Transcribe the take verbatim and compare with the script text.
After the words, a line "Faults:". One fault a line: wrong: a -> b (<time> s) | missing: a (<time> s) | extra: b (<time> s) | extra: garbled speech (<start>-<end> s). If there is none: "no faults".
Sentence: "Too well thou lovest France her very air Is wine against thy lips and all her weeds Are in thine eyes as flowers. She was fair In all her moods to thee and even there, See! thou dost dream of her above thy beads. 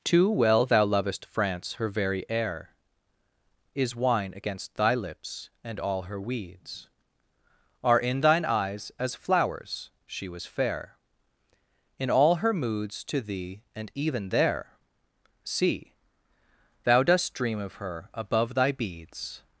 "Too well thou lovest France her very air Is wine against thy lips and all her weeds Are in thine eyes as flowers. She was fair In all her moods to thee and even there, See! thou dost dream of her above thy beads.
Faults:
no faults